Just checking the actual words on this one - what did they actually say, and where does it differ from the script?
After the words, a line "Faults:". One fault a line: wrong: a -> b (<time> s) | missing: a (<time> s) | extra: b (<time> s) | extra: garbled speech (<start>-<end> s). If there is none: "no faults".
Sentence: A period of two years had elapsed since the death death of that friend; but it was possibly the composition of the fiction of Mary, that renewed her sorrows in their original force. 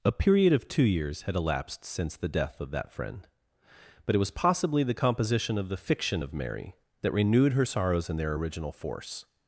A period of two years had elapsed since the death of that friend; but it was possibly the composition of the fiction of Mary, that renewed her sorrows in their original force.
Faults:
missing: death (2.6 s)